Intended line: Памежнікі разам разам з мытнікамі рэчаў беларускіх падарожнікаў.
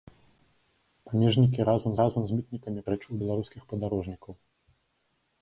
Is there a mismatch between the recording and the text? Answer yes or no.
no